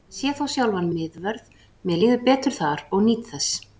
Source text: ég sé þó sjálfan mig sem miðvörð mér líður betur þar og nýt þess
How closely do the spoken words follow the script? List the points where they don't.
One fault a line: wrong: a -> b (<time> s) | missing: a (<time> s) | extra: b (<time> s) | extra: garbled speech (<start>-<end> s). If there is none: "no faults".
missing: mig sem (0.9 s)